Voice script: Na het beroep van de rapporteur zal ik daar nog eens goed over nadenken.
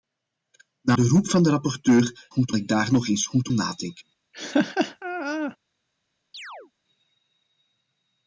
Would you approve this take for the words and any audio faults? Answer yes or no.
no